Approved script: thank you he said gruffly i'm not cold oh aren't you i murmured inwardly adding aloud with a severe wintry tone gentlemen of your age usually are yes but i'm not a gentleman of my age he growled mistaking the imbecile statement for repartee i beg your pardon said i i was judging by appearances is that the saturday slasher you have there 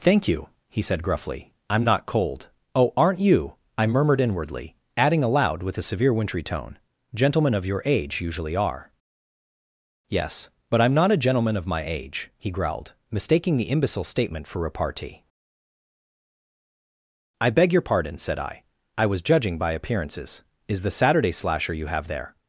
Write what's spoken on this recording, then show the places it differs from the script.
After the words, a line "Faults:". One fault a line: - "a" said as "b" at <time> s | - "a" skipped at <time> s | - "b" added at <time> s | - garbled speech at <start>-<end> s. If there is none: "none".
thank you he said gruffly i'm not cold oh aren't you i murmured inwardly adding aloud with a severe wintry tone gentlemen of your age usually are yes but i'm not a gentleman of my age he growled mistaking the imbecile statement for repartee i beg your pardon said i i was judging by appearances is the saturday slasher you have there
Faults:
- "that" skipped at 20.8 s